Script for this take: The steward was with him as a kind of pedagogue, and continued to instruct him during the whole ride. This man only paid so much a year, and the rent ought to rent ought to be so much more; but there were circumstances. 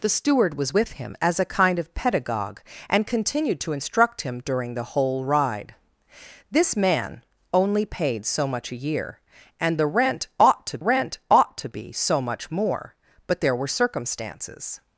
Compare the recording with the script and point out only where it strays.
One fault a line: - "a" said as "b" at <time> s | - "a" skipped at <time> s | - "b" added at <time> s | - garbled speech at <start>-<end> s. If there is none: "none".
none